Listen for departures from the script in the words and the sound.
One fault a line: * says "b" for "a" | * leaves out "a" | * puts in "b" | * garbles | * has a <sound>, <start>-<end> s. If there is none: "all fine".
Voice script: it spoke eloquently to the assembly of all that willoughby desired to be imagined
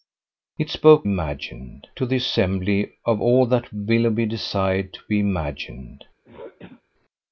* says "imagined" for "eloquently"
* has a throat clearing, 6.2-6.8 s